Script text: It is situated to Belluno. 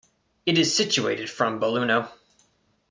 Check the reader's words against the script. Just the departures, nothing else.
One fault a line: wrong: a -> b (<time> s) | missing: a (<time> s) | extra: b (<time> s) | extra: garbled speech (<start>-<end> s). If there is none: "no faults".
wrong: to -> from (1.3 s)